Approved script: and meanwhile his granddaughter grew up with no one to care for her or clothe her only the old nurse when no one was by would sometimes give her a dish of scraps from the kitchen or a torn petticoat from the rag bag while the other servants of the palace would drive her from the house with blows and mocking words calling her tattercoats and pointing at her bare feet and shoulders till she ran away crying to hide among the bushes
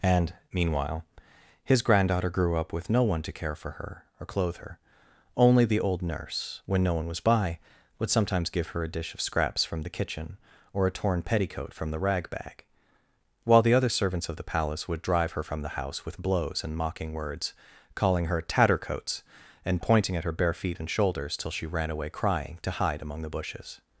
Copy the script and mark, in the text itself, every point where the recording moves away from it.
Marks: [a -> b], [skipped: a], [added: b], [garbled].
and meanwhile his granddaughter grew up with no one to care for her or clothe her only the old nurse when no one was by would sometimes give her a dish of scraps from the kitchen or a torn petticoat from the rag bag while the other servants of the palace would drive her from the house with blows and mocking words calling her tattercoats and pointing at her bare feet and shoulders till she ran away crying to hide among the bushes